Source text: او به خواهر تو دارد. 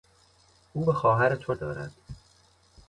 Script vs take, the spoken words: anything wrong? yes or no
no